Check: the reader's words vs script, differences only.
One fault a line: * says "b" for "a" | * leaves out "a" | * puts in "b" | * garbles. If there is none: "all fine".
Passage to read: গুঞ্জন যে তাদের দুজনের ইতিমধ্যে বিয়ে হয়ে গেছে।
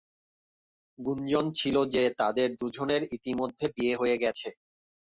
* puts in "ছিল"